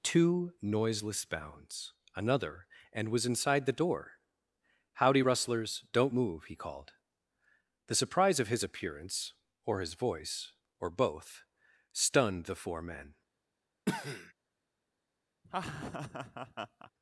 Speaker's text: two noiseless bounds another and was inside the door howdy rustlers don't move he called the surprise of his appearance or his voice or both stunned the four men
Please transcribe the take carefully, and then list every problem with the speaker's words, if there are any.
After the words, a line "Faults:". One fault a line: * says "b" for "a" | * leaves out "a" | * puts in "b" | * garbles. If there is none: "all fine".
two noiseless bounds another and was inside the door howdy rustlers don't move he called the surprise of his appearance or his voice or both stunned the four men
Faults:
all fine